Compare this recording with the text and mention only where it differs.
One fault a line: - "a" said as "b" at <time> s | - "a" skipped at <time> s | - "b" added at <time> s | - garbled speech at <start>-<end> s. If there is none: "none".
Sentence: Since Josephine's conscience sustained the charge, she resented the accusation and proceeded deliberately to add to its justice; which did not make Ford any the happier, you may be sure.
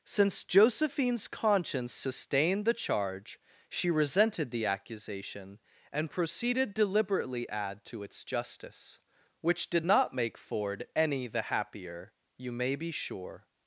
- "to" skipped at 7.5 s